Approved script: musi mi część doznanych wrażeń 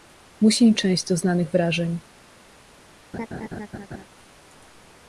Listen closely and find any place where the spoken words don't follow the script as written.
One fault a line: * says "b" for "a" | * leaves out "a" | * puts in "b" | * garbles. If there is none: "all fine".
all fine